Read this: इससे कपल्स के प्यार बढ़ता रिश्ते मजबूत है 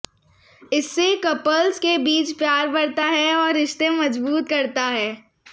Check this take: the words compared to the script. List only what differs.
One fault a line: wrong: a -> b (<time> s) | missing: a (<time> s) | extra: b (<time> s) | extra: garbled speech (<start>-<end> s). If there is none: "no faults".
extra: बीच (2.0 s)
extra: है और (3.1 s)
extra: करता (4.5 s)